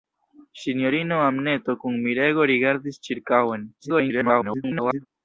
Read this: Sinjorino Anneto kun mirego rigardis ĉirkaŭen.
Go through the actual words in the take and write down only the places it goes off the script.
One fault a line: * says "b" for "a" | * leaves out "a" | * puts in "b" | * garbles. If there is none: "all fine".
* garbles